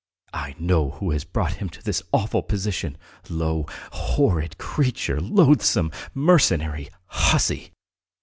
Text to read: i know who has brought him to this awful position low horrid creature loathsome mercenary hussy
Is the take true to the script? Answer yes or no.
yes